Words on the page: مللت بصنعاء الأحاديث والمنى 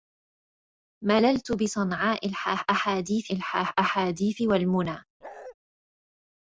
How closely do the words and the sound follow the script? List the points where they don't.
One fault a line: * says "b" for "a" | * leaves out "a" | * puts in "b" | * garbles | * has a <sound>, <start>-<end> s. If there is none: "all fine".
* puts in "الأحاديث"
* has a bark, 5.2-5.6 s